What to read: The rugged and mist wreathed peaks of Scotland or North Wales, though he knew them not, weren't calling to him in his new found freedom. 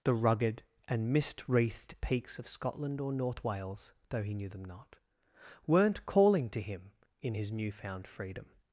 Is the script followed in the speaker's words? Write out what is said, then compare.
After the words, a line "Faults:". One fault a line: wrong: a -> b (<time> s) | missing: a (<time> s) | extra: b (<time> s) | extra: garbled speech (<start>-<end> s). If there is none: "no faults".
The rugged and mist wreathed peaks of Scotland or North Wales, though he knew them not, weren't calling to him in his new found freedom.
Faults:
no faults